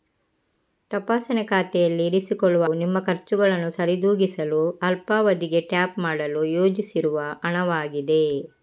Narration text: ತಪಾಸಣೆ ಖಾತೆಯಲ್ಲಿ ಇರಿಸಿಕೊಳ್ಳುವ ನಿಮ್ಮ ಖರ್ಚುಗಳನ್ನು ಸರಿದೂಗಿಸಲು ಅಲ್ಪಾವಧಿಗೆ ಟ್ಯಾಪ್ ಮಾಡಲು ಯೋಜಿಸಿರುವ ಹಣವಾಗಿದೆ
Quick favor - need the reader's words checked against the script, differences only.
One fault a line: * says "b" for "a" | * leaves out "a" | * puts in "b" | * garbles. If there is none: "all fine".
all fine